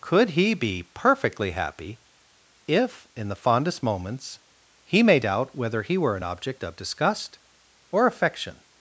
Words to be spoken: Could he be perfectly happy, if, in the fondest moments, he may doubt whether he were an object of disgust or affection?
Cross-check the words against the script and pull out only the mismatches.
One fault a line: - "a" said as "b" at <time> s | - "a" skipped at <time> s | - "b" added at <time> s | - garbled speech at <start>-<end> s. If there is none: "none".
none